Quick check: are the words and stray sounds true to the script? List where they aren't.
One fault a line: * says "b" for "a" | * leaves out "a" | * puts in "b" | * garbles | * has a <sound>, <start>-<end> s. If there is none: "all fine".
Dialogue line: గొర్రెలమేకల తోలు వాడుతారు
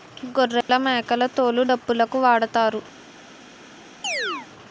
* has a dropout, 0.6-0.7 s
* puts in "డప్పులుకు"
* has a chirp, 4.0-4.5 s